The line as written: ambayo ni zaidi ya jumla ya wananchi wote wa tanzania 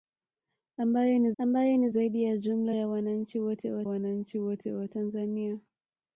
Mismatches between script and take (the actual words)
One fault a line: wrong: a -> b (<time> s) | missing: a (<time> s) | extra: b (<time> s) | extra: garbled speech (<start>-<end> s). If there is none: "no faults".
extra: ambayo ni (1.4 s)
extra: wananchi wote wa (3.8 s)